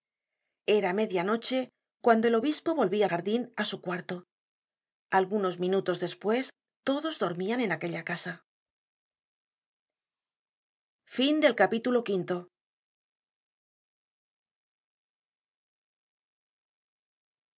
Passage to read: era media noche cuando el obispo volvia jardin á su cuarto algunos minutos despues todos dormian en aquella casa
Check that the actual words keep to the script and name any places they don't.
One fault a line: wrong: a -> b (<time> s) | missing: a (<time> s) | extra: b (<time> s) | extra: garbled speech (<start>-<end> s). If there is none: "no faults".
no faults